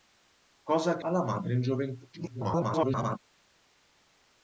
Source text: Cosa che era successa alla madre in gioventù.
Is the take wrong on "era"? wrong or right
wrong